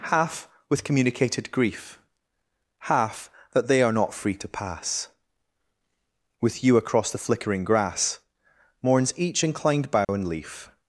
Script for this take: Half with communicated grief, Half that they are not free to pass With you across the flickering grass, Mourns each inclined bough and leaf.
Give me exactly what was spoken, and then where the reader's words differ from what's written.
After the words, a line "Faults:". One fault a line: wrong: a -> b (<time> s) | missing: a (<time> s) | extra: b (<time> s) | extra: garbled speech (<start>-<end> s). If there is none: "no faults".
Half with communicated grief, Half that they are not free to pass With you across the flickering grass, Mourns each inclined bough and leaf.
Faults:
no faults